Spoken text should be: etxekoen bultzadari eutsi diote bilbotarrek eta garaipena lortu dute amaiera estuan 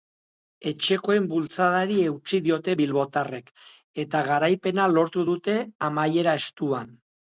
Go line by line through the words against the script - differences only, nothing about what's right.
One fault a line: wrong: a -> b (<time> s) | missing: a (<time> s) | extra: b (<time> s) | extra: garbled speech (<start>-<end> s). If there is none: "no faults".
no faults